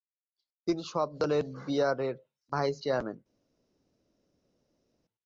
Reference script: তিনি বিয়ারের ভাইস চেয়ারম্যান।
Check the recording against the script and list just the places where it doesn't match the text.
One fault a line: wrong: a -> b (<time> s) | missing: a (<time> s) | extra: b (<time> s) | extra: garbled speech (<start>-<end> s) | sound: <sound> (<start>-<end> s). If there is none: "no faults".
extra: সব দলের (0.9 s)